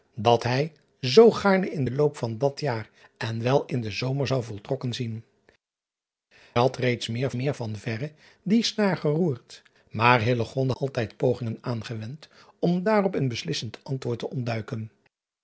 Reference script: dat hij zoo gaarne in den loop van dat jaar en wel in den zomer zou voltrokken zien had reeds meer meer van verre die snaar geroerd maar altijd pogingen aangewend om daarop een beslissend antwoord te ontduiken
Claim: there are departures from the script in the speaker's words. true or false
false